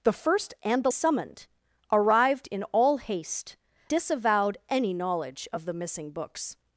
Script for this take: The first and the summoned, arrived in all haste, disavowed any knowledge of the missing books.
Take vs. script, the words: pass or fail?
pass